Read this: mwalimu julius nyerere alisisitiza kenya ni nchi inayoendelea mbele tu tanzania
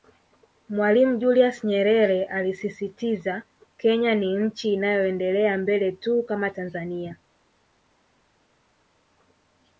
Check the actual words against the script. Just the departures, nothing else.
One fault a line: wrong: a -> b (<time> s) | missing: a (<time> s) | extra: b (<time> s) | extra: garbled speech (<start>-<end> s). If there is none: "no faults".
extra: kama (6.2 s)